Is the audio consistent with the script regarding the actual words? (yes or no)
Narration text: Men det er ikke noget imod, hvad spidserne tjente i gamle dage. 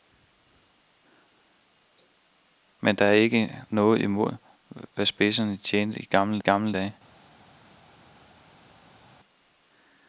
no